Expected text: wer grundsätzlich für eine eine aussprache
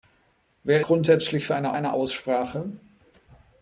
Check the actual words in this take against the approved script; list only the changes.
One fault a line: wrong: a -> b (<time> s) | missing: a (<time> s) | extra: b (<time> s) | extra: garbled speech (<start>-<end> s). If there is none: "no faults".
no faults